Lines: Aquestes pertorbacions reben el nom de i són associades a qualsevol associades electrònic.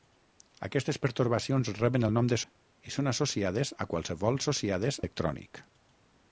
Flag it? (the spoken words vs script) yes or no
no